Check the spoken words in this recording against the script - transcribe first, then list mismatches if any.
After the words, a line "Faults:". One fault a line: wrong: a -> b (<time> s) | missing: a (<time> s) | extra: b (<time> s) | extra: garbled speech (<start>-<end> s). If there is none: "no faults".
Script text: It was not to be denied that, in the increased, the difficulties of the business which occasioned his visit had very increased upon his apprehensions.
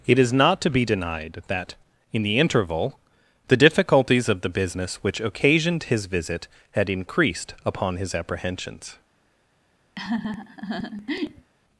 It is not to be denied that, in the interval, the difficulties of the business which occasioned his visit had increased upon his apprehensions.
Faults:
wrong: was -> is (0.2 s)
wrong: increased -> interval (2.4 s)
missing: very (6.9 s)